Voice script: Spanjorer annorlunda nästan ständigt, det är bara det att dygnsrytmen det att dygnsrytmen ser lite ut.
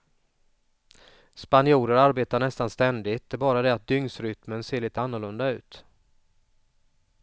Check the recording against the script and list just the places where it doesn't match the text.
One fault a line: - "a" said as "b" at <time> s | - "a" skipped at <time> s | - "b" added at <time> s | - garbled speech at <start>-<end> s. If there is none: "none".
- "annorlunda" said as "arbetar" at 1.9 s
- "det att dygnsrytmen" skipped at 4.6 s
- "annorlunda" added at 5.0 s